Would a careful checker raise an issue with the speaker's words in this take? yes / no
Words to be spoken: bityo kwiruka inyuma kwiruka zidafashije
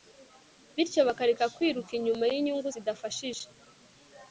yes